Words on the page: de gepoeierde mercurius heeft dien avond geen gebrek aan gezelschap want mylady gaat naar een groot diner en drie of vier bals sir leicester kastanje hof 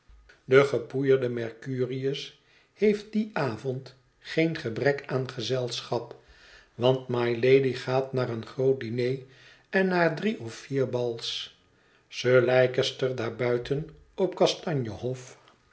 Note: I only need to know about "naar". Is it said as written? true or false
true